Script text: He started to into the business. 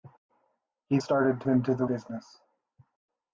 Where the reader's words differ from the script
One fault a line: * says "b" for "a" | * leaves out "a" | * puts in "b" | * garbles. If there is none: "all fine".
all fine